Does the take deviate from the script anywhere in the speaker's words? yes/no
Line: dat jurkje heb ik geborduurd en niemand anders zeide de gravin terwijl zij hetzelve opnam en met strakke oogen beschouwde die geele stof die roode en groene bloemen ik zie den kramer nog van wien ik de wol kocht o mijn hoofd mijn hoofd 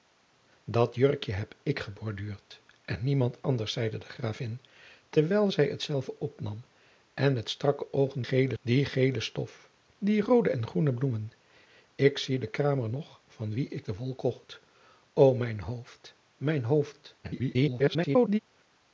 yes